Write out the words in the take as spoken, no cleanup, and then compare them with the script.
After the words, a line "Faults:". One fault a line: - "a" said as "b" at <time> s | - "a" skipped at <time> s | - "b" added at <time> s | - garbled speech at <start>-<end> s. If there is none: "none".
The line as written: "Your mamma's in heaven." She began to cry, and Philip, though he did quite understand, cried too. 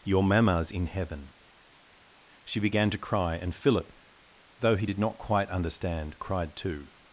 "Your mamma's in heaven." She began to cry, and Philip, though he did not quite understand, cried too.
Faults:
- "not" added at 5.0 s